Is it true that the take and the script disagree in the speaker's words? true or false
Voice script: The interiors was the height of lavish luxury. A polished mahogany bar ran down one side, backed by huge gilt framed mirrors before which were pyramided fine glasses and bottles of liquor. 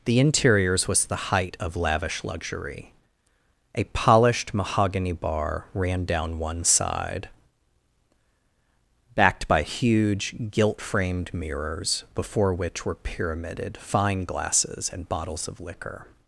false